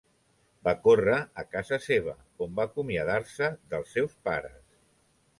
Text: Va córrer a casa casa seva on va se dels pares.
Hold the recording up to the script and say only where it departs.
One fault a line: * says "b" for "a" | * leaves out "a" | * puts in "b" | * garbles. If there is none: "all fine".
* leaves out "casa"
* puts in "acomiadar"
* puts in "seus"